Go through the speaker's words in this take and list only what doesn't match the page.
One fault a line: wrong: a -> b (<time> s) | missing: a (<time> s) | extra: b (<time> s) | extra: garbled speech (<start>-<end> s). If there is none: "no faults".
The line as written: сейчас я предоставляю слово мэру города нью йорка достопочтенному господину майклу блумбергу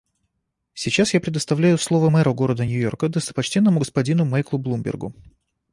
no faults